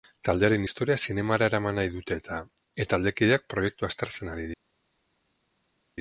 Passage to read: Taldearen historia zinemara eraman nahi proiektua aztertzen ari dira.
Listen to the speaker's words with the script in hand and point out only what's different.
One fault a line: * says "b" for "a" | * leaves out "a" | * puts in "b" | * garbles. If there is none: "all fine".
* puts in "dute eta taldekideak"